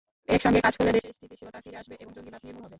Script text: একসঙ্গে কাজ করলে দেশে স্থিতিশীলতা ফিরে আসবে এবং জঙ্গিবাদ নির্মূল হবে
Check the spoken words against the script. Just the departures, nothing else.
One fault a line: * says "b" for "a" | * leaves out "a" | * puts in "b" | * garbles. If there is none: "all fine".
all fine